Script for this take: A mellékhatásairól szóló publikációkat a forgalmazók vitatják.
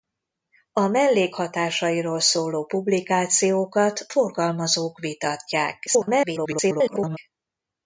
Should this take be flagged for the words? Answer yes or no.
yes